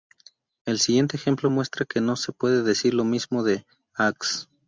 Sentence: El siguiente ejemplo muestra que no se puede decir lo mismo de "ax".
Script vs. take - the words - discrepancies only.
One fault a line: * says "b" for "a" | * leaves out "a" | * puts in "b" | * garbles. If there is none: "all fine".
all fine